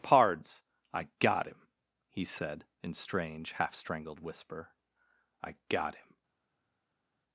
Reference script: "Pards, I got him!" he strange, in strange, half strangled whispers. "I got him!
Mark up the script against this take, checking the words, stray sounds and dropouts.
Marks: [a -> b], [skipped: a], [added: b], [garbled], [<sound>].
"Pards, I got him!" he [strange, -> said] in strange, half strangled [whispers. -> whisper] "I got him!